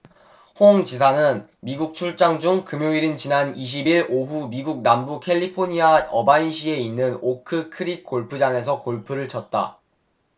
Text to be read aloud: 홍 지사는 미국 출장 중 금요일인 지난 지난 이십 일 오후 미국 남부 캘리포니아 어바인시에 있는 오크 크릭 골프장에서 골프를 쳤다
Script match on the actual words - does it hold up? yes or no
no